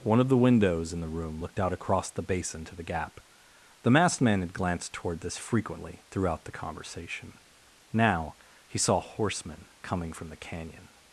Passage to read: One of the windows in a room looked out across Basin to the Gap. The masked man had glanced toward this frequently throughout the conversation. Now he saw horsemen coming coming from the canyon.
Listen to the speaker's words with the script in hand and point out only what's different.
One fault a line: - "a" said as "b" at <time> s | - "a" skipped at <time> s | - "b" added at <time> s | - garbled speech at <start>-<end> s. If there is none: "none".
- "a" said as "the" at 1.0 s
- "the" added at 2.1 s
- "coming" skipped at 10.1 s